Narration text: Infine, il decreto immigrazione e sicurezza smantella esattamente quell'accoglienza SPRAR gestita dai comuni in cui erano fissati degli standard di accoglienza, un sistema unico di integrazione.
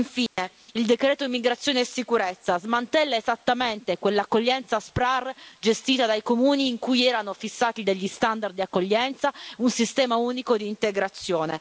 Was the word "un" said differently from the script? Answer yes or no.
no